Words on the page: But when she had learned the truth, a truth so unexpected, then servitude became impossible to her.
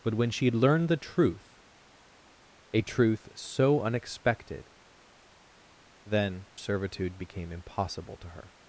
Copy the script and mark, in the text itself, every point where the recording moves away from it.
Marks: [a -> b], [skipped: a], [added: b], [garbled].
But when she had learned the truth, a truth so unexpected, then servitude became impossible to her.